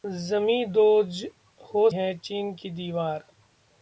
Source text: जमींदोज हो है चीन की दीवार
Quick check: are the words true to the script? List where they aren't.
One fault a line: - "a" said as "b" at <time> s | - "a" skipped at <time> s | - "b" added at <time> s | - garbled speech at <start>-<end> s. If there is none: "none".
none